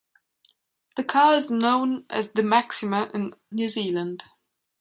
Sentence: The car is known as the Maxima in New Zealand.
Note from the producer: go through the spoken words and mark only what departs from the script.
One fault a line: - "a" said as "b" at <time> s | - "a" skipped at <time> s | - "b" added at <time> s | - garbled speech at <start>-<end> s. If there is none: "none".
none